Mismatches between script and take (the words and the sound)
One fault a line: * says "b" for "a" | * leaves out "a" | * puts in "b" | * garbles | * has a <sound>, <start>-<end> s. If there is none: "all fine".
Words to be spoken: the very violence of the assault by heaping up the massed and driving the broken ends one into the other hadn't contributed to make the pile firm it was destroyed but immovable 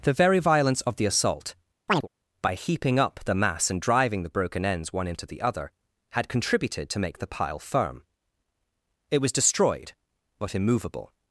* has a chirp, 1.9-2.1 s
* says "mass" for "massed"
* says "had" for "hadn't"